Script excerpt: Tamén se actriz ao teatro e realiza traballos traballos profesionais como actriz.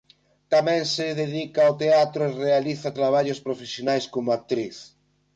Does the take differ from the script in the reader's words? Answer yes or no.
yes